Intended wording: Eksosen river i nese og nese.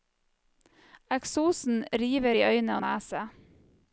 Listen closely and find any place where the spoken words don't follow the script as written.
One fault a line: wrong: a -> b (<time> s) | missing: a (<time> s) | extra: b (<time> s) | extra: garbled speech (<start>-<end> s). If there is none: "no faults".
wrong: nese -> øyne (2.5 s)